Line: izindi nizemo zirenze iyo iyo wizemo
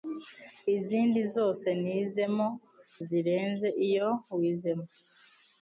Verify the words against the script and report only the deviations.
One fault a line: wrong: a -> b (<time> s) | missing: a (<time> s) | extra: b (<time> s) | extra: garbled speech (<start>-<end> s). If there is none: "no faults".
extra: zose (1.4 s)
missing: iyo (4.1 s)